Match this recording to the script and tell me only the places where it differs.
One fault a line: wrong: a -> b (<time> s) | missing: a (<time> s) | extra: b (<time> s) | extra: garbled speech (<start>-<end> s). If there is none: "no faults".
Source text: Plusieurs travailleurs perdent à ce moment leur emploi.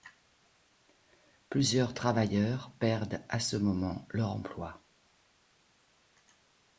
no faults